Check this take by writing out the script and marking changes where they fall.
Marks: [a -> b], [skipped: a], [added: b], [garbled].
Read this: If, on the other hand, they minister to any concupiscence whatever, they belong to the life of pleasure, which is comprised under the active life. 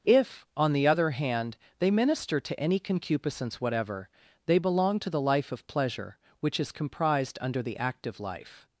If, on the other hand, they minister to any concupiscence whatever, they belong to the life of pleasure, which is comprised under the active life.